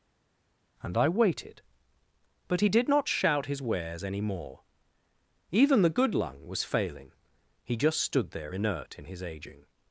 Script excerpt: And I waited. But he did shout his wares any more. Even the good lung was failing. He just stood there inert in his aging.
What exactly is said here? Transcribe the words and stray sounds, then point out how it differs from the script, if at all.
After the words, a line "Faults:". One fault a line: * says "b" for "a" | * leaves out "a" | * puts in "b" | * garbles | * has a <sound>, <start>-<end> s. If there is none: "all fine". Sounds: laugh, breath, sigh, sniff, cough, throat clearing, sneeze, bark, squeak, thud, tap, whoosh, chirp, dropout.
And I waited. But he did not shout his wares any more. Even the good lung was failing. He just stood there inert in his aging.
Faults:
* puts in "not"